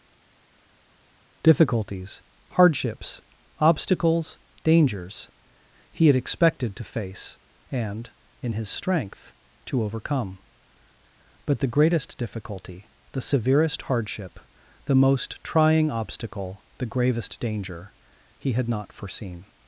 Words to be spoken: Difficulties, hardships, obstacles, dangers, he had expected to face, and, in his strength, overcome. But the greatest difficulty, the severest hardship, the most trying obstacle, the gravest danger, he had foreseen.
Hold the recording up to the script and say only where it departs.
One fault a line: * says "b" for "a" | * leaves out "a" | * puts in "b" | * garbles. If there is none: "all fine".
* puts in "to"
* puts in "not"